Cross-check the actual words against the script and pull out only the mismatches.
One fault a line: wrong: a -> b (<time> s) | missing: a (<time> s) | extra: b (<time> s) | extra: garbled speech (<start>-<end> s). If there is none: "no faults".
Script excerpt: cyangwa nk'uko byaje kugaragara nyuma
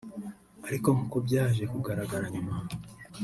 wrong: cyangwa -> ariko (0.7 s)